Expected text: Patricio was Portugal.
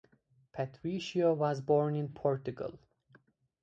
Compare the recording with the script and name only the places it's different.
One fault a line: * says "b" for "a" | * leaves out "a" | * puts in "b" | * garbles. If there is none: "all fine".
* puts in "born in"